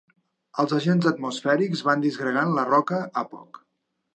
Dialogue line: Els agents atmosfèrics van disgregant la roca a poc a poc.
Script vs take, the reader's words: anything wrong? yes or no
yes